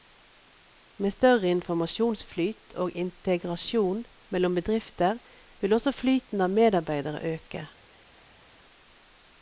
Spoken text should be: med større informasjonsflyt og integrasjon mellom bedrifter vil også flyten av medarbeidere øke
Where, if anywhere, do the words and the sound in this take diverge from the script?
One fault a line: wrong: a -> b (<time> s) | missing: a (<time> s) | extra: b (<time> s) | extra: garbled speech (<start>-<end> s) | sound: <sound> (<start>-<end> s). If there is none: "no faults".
no faults